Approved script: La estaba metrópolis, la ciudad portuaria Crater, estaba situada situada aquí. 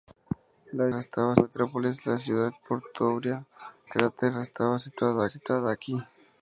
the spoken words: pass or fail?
pass